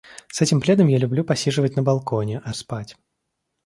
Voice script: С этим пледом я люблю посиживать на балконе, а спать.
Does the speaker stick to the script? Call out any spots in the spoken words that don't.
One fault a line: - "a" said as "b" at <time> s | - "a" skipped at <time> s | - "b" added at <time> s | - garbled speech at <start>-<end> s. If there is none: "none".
none